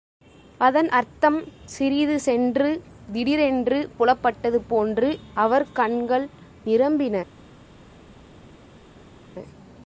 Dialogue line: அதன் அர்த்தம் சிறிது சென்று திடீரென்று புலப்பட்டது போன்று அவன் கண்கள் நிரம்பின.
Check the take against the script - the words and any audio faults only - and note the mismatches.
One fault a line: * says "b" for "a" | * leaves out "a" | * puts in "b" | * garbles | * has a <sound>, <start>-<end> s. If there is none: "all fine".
* says "அவர்" for "அவன்"